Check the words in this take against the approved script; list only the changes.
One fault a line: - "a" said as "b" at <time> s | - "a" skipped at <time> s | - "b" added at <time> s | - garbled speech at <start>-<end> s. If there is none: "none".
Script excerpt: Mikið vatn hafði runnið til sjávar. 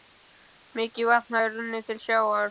none